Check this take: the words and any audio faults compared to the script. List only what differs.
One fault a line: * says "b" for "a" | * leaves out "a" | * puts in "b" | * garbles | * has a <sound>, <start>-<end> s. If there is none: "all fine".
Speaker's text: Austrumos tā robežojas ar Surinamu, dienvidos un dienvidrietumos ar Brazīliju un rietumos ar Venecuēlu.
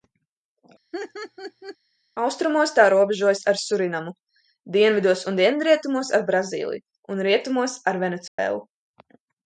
* has a laugh, 0.9-1.8 s
* has a dropout, 8.3-8.4 s